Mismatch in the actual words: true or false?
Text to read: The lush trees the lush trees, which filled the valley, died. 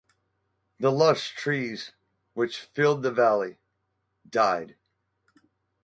true